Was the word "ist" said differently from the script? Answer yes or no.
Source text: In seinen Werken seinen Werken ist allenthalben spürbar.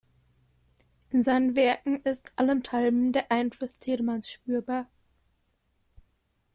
yes